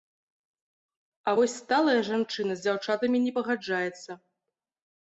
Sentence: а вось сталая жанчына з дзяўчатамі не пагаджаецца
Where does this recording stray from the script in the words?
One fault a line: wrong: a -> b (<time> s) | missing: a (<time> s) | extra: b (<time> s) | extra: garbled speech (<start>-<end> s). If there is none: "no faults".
no faults